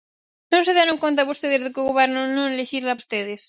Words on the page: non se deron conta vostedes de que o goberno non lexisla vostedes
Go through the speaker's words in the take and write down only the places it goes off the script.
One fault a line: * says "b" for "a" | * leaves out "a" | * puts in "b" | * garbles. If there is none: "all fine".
all fine